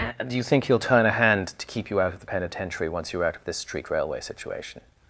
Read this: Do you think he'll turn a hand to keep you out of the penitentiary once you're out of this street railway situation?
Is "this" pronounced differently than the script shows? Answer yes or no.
no